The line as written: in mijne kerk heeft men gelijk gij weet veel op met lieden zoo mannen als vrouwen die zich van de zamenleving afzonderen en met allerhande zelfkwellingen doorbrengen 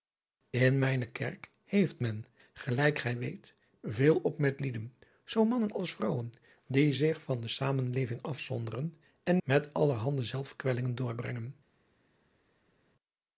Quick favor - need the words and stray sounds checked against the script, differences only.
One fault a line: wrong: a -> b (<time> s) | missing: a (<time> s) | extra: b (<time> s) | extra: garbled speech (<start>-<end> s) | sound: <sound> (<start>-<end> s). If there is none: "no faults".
no faults